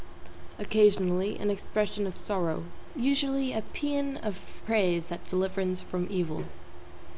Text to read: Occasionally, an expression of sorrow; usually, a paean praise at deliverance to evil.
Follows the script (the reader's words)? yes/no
no